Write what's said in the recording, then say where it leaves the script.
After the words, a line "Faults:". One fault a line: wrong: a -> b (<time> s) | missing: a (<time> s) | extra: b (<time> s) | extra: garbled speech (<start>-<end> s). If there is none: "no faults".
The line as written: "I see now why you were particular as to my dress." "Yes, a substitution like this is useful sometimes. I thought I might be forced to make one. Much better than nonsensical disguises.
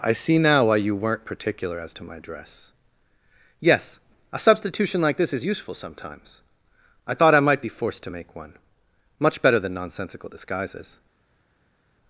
"I see now why you weren't particular as to my dress." "Yes, a substitution like this is useful sometimes. I thought I might be forced to make one. Much better than nonsensical disguises.
Faults:
wrong: were -> weren't (0.9 s)